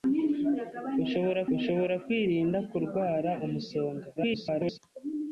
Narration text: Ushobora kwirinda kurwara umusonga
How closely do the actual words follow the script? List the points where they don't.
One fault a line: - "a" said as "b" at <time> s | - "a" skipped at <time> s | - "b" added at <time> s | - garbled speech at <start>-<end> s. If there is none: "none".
- "ushobora" added at 1.6 s
- garbled speech at 4.2-4.8 s